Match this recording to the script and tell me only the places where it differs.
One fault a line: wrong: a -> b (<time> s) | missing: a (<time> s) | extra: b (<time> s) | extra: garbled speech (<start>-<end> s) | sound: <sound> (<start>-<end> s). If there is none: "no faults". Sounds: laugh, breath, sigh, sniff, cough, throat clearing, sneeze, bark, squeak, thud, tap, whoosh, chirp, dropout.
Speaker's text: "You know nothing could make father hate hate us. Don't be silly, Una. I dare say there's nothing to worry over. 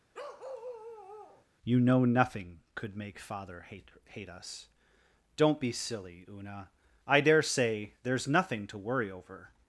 sound: bark (0.1-1.5 s)